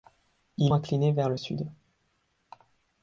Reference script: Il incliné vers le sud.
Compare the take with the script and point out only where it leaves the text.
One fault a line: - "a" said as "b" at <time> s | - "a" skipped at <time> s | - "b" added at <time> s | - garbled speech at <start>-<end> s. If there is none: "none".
none